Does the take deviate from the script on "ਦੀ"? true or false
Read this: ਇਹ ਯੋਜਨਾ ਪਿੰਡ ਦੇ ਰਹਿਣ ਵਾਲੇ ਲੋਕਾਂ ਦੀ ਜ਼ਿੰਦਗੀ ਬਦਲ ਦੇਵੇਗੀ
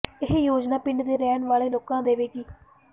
true